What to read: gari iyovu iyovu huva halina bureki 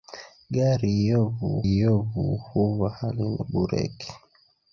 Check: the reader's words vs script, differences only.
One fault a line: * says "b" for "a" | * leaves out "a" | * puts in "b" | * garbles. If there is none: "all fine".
all fine